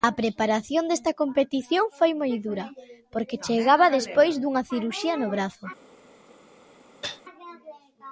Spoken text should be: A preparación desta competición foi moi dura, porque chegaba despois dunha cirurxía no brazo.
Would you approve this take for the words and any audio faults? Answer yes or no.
no